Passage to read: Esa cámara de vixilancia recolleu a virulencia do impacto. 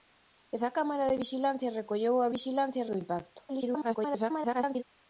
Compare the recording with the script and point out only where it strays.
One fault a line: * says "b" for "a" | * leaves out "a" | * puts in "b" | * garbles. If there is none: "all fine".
* says "vixilancia" for "virulencia"
* garbles